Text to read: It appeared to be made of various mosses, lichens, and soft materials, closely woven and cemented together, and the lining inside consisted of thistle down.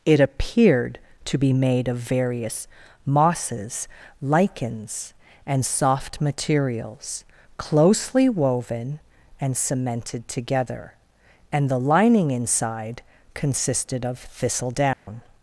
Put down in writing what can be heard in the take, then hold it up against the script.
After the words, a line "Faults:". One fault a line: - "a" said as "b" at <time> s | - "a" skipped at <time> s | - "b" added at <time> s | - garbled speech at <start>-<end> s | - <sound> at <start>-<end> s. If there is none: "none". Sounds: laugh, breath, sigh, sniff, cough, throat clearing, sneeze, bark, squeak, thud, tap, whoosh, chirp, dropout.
It appeared to be made of various mosses, lichens, and soft materials, closely woven and cemented together, and the lining inside consisted of thistle down.
Faults:
- dropout at 14.9-15.1 s